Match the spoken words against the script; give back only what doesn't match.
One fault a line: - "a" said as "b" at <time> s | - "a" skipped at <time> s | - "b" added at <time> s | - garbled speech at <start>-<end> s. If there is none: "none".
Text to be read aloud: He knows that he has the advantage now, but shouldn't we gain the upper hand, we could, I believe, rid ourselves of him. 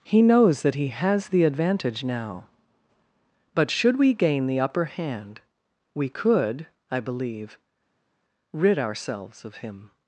- "shouldn't" said as "should" at 3.7 s